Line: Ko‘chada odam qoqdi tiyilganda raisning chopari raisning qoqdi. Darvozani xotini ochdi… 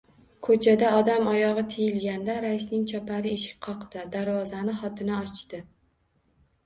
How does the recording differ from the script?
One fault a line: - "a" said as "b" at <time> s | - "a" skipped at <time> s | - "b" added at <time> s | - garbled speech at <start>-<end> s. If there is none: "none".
- "qoqdi" said as "oyog‘i" at 1.3 s
- "raisning" said as "eshik" at 3.4 s